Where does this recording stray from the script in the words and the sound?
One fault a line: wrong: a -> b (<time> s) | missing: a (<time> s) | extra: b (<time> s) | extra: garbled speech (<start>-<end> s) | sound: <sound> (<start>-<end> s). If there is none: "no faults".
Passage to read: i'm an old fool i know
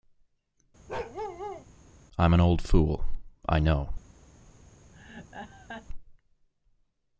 sound: bark (0.9-1.7 s)
sound: laugh (4.9-5.9 s)